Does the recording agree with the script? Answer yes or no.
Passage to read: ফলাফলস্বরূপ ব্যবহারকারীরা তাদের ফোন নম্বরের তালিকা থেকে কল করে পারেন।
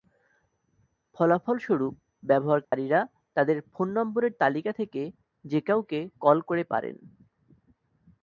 no